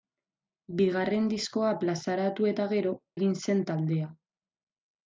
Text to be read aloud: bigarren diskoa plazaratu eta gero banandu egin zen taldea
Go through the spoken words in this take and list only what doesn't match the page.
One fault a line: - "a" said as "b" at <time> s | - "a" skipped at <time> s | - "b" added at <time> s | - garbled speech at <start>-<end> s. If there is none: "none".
- "banandu" skipped at 3.0 s